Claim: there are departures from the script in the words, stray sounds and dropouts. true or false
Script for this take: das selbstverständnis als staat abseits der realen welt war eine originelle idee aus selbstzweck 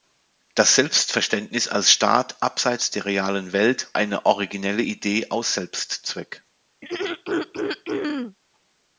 true